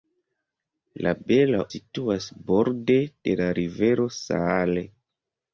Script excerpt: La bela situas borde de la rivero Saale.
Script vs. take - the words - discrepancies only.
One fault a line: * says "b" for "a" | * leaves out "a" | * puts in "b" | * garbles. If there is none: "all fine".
all fine